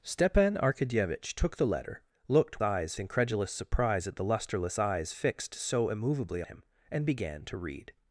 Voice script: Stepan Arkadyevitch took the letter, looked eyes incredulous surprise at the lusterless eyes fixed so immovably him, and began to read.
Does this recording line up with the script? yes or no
yes